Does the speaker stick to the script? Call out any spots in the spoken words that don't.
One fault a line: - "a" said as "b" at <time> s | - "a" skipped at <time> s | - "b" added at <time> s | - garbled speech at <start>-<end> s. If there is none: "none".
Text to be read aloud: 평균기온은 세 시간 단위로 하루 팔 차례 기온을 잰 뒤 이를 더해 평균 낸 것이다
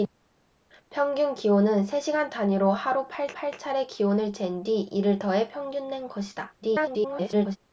- "팔" added at 3.3 s
- garbled speech at 6.6-7.6 s